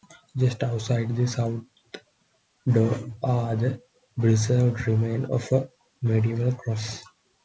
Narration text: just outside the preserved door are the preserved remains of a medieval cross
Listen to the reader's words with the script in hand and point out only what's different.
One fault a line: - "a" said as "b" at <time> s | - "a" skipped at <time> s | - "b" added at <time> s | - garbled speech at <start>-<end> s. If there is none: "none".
- "preserved" said as "south" at 1.3 s